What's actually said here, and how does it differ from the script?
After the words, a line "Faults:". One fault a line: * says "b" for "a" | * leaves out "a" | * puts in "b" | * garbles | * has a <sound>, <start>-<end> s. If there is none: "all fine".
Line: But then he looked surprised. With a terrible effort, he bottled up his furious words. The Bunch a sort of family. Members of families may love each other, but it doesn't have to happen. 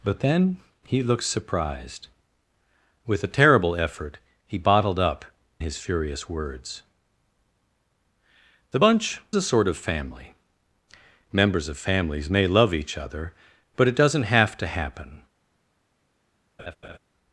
But then he looked surprised. With a terrible effort, he bottled up his furious words. The Bunch a sort of family. Members of families may love each other, but it doesn't have to happen.
Faults:
* has a laugh, 16.6-17.0 s